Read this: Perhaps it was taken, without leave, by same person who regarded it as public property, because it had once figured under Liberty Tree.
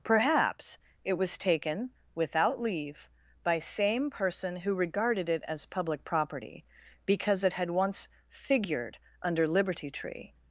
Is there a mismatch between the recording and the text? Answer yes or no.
no